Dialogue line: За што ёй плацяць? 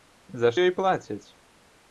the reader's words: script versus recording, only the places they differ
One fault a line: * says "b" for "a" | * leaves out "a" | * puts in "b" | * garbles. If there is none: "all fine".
* leaves out "што"